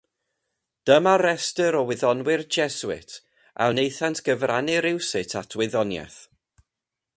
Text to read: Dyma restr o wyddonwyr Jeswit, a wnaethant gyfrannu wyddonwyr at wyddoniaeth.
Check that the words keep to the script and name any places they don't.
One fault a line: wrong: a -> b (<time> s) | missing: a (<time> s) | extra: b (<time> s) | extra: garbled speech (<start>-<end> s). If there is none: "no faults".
wrong: wyddonwyr -> rywsut (4.9 s)